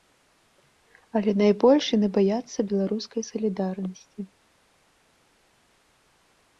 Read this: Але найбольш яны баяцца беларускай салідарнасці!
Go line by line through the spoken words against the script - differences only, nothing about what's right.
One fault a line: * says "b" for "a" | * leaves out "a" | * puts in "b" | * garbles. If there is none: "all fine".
all fine